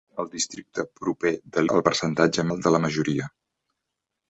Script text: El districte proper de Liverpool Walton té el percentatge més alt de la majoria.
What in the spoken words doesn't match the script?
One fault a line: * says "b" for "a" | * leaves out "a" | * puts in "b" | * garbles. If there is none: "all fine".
* leaves out "Liverpool Walton té"
* leaves out "més"